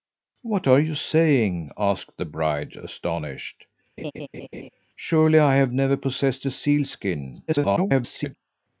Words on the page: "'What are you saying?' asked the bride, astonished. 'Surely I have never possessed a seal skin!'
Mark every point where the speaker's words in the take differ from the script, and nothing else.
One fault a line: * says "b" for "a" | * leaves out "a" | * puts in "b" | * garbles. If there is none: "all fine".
* garbles